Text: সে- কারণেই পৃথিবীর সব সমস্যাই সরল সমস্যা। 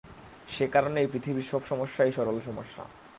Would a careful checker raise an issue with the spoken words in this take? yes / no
no